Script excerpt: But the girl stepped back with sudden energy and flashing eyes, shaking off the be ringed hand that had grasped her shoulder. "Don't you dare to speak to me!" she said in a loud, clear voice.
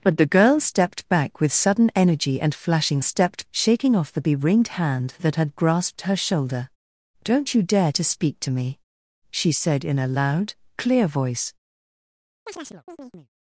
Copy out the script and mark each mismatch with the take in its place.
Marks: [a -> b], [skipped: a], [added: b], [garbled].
But the girl stepped back with sudden energy and flashing [eyes, -> stepped] shaking off the be ringed hand that had grasped her shoulder. "Don't you dare to speak to me!" she said in a loud, clear voice.